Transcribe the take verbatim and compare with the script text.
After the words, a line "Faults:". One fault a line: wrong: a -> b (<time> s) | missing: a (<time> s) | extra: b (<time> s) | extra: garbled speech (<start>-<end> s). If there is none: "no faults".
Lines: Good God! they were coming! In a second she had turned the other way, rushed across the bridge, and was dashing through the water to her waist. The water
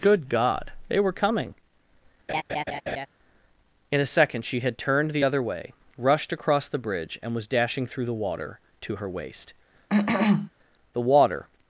Good God! they were coming! In a second she had turned the other way, rushed across the bridge, and was dashing through the water to her waist. The water
Faults:
no faults